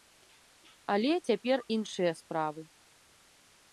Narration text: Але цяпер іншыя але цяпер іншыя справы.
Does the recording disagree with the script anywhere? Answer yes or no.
yes